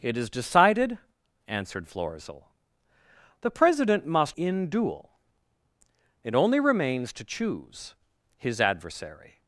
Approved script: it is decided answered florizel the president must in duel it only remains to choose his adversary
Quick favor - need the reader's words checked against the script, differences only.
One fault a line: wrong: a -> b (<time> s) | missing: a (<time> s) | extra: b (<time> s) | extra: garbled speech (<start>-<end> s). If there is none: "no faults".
no faults